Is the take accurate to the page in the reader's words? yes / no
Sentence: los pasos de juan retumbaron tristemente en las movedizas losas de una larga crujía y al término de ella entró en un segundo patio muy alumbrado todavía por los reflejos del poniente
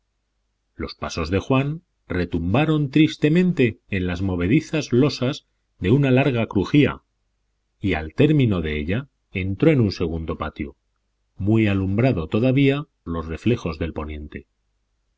no